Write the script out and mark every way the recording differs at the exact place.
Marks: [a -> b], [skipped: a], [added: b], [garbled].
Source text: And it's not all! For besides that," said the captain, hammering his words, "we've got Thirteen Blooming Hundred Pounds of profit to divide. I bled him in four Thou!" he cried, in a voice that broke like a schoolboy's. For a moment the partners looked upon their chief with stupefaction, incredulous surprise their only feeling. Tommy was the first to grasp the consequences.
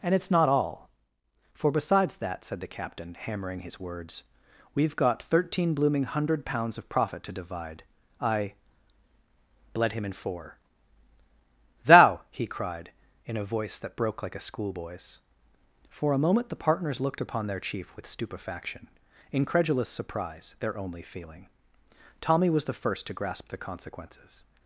And it's not all! For besides that," said the captain, hammering his words, "we've got Thirteen Blooming Hundred Pounds of profit to divide. I bled him in four Thou!" he cried, in a voice that broke like a schoolboy's. For a moment the partners looked upon their chief with stupefaction, incredulous surprise their only feeling. Tommy was the first to grasp the consequences.